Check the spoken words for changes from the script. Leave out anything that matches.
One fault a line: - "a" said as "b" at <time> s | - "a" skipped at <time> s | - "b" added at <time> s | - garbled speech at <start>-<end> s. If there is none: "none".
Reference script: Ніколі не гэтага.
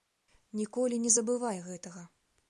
- "забывай" added at 1.2 s